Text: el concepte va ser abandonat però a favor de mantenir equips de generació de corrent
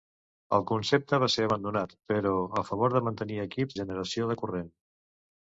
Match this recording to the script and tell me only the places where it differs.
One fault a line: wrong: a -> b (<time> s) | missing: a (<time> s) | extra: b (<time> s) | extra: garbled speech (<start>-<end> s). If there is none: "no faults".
missing: de (3.8 s)